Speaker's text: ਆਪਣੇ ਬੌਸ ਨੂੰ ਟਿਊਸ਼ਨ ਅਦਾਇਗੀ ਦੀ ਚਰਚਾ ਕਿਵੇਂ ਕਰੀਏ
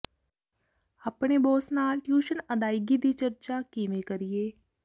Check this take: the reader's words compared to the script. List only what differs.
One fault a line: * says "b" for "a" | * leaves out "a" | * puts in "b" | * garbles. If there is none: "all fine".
* says "ਨਾਲ" for "ਨੂੰ"